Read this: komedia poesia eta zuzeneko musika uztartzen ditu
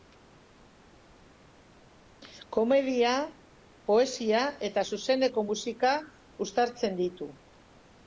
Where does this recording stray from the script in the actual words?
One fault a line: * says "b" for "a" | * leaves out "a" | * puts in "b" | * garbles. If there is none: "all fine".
all fine